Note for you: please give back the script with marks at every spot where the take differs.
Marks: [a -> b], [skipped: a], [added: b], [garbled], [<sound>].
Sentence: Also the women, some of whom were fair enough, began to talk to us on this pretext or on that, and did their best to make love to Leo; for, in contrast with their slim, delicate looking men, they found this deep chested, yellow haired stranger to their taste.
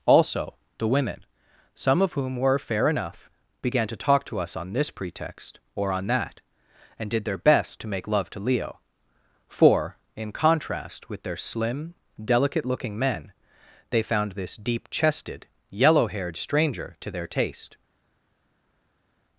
Also the women, some of whom were fair enough, began to talk to us on this pretext or on that, and did their best to make love to Leo; for, in contrast with their slim, delicate looking men, they found this deep chested, yellow haired stranger to their taste.